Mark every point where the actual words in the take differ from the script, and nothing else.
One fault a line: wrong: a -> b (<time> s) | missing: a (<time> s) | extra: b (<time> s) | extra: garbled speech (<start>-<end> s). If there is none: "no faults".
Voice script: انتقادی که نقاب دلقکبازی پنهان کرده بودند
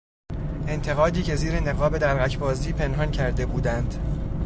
extra: زیر (1.3 s)